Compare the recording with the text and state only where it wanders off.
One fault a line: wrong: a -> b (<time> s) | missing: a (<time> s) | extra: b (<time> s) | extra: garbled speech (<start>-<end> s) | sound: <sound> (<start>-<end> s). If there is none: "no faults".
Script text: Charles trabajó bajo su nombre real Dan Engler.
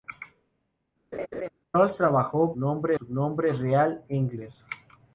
sound: laugh (1.1-1.5 s)
wrong: bajo -> nombre (2.6 s)
missing: Dan (4.0 s)